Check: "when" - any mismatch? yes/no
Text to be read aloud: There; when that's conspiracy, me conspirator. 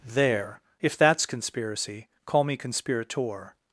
yes